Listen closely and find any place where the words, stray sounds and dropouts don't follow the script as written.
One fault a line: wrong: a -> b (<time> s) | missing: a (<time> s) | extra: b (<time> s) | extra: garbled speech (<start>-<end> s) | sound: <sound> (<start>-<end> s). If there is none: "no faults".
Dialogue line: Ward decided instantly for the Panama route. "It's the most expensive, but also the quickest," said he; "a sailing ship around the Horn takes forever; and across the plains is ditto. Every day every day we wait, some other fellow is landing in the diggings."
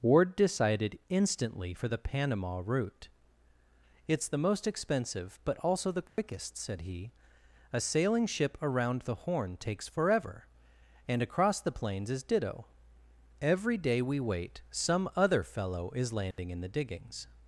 sound: dropout (6.1-6.2 s)
missing: every day (14.0 s)
sound: dropout (16.3-16.4 s)